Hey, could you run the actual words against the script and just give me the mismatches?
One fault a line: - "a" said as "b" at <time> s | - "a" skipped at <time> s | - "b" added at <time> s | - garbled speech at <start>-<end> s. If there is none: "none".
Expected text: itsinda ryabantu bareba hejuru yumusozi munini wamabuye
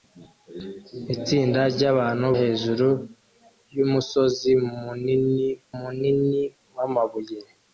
- "bareba" skipped at 2.3 s
- "munini" added at 5.8 s